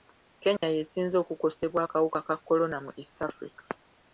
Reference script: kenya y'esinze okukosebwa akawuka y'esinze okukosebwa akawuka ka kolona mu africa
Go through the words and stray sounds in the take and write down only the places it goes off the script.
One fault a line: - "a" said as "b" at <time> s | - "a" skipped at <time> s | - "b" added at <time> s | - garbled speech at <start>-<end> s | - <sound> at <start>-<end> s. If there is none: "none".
- dropout at 0.6-0.6 s
- "y'esinze okukosebwa akawuka" skipped at 2.2 s
- "east" added at 3.0 s